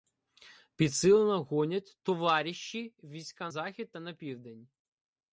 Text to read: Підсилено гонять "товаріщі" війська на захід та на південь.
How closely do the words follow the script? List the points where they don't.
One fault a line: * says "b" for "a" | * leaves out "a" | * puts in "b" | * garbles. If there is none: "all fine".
* leaves out "на"